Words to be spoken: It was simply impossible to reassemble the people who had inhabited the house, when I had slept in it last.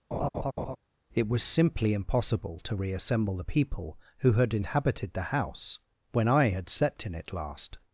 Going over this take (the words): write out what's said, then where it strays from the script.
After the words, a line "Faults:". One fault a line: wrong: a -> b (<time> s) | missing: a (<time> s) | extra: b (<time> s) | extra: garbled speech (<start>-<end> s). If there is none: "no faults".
It was simply impossible to reassemble the people who had inhabited the house, when I had slept in it last.
Faults:
no faults